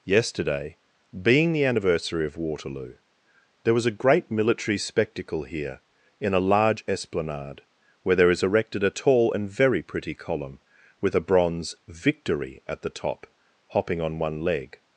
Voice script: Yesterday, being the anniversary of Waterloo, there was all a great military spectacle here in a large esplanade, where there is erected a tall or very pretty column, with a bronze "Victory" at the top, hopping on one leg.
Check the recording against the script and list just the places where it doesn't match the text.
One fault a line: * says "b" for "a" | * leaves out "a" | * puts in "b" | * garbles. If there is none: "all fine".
* leaves out "all"
* says "and" for "or"